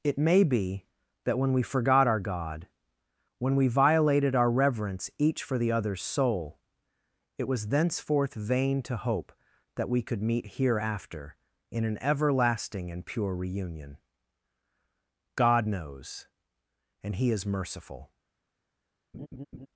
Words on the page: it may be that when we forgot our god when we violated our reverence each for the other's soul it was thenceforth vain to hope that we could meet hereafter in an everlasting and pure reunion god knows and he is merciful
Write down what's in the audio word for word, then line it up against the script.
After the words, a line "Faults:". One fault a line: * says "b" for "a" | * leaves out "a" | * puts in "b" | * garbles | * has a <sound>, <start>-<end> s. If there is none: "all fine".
it may be that when we forgot our god when we violated our reverence each for the other's soul it was thenceforth vain to hope that we could meet hereafter in an everlasting and pure reunion god knows and he is merciful
Faults:
* has a laugh, 19.1-19.7 s